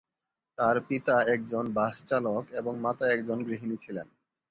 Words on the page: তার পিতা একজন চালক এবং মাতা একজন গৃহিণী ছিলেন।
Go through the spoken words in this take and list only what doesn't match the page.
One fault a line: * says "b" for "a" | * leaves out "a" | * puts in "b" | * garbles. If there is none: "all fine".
* puts in "বাস"